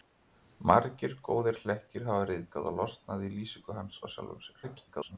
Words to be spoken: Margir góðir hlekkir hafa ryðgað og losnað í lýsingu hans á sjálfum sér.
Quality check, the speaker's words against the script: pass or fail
fail